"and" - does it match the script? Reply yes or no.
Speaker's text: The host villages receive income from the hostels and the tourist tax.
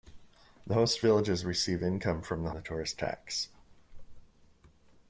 no